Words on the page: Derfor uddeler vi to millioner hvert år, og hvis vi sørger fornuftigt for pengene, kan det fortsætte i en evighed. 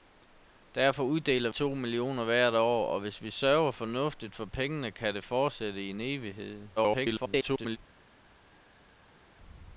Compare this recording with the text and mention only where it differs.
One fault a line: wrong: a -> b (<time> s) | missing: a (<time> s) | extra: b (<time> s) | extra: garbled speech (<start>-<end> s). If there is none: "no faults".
missing: vi (1.5 s)
extra: garbled speech (6.8-7.8 s)